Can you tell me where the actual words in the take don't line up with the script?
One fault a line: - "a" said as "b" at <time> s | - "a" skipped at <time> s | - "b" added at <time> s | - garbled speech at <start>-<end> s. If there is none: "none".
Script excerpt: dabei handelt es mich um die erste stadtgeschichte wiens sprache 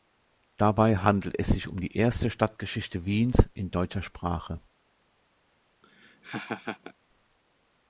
- "mich" said as "sich" at 1.5 s
- "in deutscher" added at 3.5 s